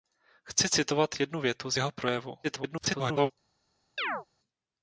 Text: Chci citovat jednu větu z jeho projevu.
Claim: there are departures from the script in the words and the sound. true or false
true